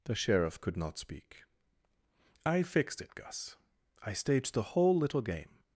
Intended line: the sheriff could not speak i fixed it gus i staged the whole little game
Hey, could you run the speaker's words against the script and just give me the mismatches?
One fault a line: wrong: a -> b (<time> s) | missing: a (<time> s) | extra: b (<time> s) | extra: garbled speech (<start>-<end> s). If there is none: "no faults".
no faults